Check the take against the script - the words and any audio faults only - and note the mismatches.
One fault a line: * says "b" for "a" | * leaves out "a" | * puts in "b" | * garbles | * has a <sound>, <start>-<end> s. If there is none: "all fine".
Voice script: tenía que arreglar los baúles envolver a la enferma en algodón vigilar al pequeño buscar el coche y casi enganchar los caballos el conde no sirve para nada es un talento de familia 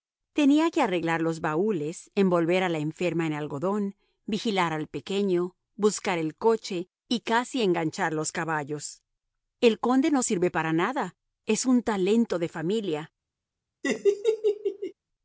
* has a laugh, 13.8-14.9 s